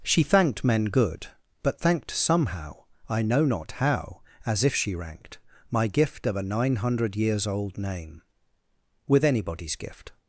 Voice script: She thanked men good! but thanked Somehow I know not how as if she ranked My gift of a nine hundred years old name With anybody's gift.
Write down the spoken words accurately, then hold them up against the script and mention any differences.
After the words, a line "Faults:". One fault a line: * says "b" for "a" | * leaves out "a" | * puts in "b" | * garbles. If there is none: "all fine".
She thanked men good! but thanked Somehow I know not how as if she ranked My gift of a nine hundred years old name With anybody's gift.
Faults:
all fine